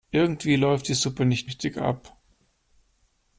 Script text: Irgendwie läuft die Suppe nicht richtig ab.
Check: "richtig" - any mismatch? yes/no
no